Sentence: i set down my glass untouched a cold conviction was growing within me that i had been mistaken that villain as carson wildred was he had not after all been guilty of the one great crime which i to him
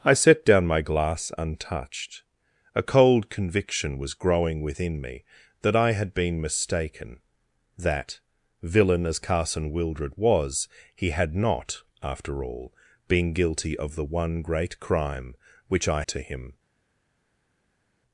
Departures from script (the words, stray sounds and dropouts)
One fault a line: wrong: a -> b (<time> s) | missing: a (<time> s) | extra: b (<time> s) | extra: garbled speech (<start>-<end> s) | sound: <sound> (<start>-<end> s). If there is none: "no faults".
no faults